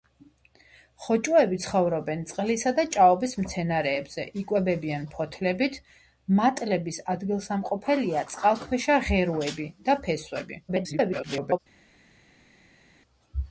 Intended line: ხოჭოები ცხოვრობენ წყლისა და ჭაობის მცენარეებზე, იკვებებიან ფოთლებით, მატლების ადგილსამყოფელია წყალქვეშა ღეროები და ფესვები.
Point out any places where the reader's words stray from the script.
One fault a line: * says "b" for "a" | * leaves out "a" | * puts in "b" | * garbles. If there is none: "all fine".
* garbles